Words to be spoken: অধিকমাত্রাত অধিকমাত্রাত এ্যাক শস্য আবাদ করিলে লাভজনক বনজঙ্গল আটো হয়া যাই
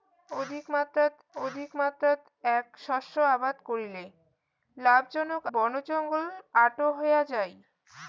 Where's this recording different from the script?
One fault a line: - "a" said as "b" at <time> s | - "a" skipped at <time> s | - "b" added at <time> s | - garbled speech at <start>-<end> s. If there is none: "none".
none